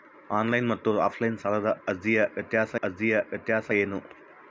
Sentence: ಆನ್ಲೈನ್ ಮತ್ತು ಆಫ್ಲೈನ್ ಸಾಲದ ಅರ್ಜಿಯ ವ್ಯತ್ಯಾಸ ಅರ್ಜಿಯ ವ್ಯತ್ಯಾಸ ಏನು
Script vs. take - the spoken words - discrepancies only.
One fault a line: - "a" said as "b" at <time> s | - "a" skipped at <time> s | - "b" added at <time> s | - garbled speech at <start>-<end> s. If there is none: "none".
none